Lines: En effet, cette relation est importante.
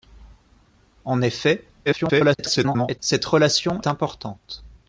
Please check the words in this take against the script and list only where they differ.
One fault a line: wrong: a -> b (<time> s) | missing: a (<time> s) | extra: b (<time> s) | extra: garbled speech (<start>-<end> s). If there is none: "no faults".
extra: garbled speech (1.9-3.0 s)
missing: est (3.8 s)